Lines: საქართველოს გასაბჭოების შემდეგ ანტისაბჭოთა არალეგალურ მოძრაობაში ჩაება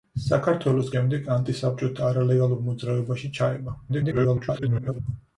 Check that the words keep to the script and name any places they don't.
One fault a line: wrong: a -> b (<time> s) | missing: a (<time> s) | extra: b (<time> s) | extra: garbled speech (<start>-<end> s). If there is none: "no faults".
missing: გასაბჭოების (0.9 s)
extra: garbled speech (3.9-5.0 s)